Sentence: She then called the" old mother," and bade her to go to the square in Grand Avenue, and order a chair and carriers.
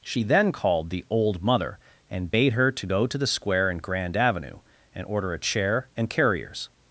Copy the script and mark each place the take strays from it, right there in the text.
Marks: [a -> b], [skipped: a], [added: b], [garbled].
She then called the" old mother," and bade her to go to the square in Grand Avenue, and order a chair and carriers.